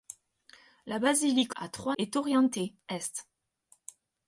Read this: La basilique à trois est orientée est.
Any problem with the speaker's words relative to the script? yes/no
no